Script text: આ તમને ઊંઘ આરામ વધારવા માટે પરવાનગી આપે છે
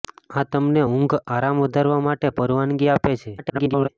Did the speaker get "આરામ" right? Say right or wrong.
right